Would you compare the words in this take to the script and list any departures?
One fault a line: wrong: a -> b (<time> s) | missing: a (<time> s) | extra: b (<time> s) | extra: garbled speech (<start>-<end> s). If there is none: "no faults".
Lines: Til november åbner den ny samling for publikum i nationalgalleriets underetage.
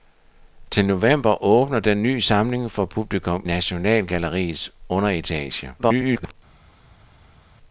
missing: i (3.5 s)
extra: garbled speech (5.8-6.3 s)